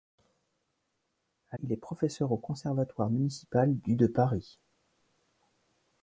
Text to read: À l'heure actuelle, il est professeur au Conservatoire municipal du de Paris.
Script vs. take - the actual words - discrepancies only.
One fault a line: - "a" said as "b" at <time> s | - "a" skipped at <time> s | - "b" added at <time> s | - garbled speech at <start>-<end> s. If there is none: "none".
- "l'heure actuelle" skipped at 1.6 s